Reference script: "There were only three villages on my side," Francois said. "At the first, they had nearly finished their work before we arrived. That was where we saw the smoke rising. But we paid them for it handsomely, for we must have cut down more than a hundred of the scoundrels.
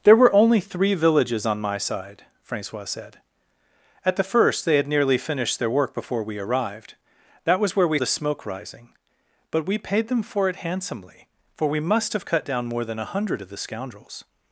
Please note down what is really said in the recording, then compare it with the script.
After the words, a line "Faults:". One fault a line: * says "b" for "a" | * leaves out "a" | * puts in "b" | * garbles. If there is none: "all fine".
"There were only three villages on my side," Francois said. "At the first, they had nearly finished their work before we arrived. That was where we the smoke rising. But we paid them for it handsomely, for we must have cut down more than a hundred of the scoundrels.
Faults:
* leaves out "saw"